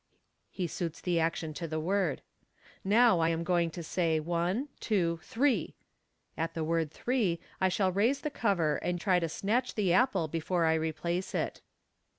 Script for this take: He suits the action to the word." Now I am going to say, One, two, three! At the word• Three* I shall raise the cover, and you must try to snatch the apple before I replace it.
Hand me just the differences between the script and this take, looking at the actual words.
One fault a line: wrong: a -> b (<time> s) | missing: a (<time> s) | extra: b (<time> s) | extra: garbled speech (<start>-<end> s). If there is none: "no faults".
missing: you must (9.0 s)